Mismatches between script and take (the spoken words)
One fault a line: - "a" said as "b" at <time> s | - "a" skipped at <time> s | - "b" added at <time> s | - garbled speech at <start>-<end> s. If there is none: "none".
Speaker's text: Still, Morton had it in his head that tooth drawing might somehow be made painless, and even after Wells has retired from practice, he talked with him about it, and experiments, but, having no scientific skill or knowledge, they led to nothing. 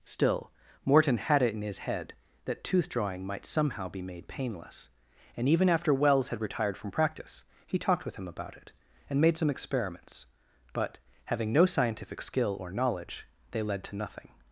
- "has" said as "had" at 6.3 s
- "made some" added at 9.2 s